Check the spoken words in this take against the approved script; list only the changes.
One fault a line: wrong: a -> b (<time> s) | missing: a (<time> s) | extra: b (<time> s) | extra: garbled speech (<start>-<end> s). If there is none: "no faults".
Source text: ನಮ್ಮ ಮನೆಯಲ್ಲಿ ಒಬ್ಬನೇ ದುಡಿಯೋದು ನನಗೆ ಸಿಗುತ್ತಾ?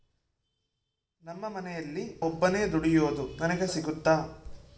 no faults